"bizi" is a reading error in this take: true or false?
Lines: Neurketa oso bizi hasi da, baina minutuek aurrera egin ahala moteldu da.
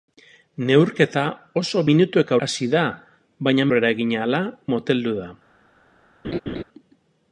true